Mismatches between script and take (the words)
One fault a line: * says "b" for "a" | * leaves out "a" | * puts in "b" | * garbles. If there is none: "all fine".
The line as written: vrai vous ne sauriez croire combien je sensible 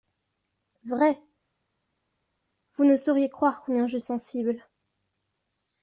all fine